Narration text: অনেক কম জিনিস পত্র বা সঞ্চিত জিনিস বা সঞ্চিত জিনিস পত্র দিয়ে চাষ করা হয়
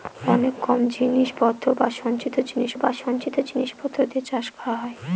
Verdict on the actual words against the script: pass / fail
pass